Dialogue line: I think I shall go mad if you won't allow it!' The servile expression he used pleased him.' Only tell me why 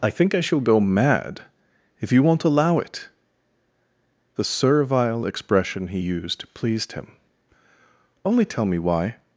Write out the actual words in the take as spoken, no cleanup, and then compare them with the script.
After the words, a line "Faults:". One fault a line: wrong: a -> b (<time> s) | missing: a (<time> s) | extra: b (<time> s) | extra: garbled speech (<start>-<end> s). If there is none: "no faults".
I think I shall go mad if you won't allow it!' The servile expression he used pleased him.' Only tell me why
Faults:
no faults